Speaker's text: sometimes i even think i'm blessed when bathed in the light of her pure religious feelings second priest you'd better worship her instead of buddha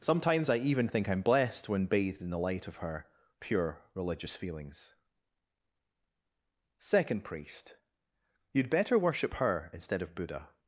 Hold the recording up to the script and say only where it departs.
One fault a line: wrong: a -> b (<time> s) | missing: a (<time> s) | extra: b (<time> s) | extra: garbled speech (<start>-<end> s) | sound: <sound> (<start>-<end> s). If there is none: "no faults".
no faults